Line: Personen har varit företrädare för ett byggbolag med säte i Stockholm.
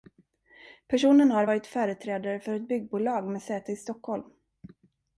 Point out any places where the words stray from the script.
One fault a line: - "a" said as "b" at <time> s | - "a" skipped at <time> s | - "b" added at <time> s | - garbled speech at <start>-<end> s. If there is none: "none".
none